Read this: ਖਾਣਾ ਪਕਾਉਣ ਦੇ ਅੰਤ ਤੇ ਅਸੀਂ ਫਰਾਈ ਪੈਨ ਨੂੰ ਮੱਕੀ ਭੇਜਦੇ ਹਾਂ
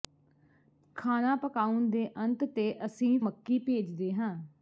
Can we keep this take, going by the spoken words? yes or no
no